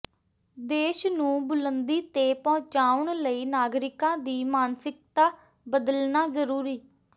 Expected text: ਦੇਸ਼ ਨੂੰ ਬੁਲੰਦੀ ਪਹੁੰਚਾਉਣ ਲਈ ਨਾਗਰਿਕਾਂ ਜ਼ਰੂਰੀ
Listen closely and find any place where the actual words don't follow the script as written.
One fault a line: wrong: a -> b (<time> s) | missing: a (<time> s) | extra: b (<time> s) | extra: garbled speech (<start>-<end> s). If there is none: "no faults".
extra: ਤੇ (2.1 s)
extra: ਦੀ ਮਾਨਸਿਕਤਾ ਬਦਲਣਾ (4.2 s)